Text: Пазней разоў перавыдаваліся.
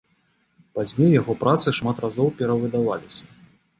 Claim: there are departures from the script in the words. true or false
true